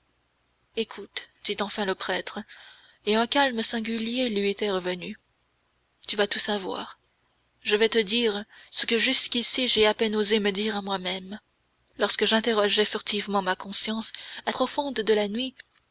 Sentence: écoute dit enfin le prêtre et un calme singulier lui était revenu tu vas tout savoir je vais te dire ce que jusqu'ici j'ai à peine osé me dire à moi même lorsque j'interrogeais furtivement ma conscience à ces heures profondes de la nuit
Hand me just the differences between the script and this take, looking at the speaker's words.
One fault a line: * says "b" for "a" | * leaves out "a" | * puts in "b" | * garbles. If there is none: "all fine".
* leaves out "ces heures"